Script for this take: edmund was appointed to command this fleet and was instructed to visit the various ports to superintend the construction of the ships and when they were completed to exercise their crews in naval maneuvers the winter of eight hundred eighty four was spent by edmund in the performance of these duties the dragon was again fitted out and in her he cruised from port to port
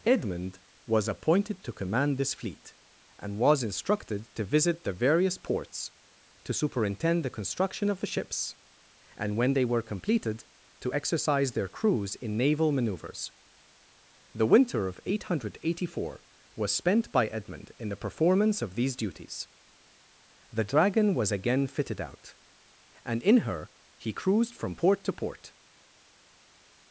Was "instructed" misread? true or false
false